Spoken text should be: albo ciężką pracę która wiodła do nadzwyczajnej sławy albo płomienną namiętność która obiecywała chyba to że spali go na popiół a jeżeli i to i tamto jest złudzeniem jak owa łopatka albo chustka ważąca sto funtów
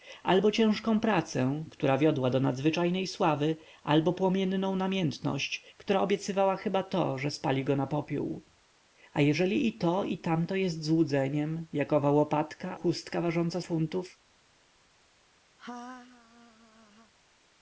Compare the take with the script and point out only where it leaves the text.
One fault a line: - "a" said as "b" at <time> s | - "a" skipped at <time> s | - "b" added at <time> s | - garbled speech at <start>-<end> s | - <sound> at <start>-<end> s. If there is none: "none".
- "albo" skipped at 12.8 s
- "sto" skipped at 13.6 s
- laugh at 15.6-17.1 s